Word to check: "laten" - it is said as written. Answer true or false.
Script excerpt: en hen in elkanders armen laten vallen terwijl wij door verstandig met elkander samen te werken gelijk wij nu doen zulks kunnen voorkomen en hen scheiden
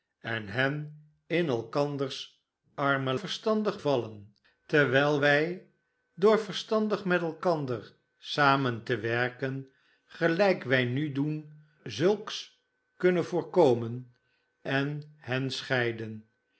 false